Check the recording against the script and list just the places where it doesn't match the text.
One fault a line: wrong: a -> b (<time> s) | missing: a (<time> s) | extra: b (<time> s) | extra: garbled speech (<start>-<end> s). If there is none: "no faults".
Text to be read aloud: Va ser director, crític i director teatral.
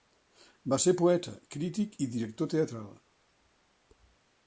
wrong: director -> poeta (1.0 s)